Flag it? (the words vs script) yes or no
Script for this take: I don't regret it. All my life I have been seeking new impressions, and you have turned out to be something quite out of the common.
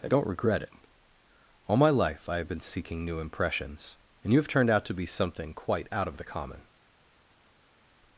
no